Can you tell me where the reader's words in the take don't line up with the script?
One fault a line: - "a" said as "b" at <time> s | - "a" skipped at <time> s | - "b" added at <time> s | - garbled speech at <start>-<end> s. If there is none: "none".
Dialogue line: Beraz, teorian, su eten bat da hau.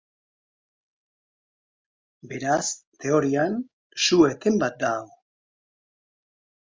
none